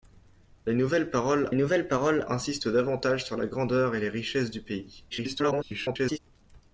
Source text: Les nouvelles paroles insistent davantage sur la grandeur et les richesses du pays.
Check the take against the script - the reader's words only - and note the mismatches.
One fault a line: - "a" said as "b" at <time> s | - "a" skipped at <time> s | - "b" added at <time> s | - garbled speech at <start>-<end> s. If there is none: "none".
- "nouvelles paroles" added at 1.5 s
- garbled speech at 5.1-6.2 s